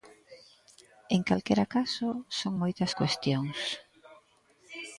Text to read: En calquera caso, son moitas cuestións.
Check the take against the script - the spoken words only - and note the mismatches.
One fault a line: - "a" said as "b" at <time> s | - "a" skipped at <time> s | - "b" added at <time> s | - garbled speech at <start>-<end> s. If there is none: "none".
none